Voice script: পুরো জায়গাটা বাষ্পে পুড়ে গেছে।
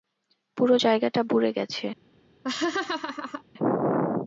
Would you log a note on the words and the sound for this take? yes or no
yes